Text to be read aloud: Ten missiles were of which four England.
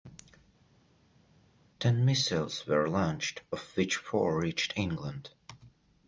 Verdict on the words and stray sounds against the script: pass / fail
fail